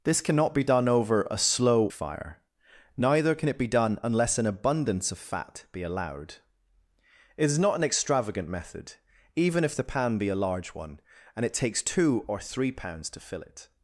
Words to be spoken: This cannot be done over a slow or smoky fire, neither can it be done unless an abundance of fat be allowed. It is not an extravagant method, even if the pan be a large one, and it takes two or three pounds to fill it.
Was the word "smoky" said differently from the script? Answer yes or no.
yes